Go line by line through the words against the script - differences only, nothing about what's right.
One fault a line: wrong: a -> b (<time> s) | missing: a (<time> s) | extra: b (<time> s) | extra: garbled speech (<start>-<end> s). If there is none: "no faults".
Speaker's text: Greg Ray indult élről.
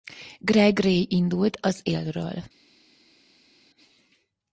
extra: az (1.6 s)